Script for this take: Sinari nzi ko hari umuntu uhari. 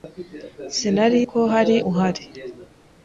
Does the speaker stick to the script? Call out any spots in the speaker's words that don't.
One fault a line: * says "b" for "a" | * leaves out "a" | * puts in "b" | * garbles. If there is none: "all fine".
* leaves out "nzi"
* leaves out "umuntu"